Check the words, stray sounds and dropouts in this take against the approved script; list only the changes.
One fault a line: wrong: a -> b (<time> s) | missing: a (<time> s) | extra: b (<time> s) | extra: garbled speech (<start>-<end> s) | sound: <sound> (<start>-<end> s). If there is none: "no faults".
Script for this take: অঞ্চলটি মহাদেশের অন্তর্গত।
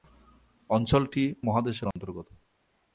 sound: dropout (1.9-2.0 s)